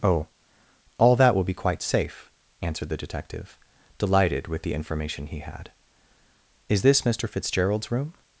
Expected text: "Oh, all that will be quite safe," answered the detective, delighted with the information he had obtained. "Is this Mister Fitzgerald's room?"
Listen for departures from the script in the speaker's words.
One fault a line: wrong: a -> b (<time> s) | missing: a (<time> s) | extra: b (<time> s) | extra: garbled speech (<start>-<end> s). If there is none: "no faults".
missing: obtained (5.7 s)